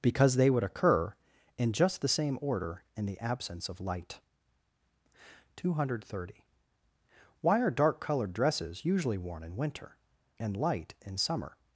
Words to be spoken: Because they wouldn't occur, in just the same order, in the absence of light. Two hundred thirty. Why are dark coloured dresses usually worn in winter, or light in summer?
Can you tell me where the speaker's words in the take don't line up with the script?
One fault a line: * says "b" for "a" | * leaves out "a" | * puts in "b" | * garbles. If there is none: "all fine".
* says "would" for "wouldn't"
* says "and" for "or"